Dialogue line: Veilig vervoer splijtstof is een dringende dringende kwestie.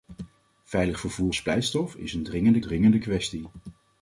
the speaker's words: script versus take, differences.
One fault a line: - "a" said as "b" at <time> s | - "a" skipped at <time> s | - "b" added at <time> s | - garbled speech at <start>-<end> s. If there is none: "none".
none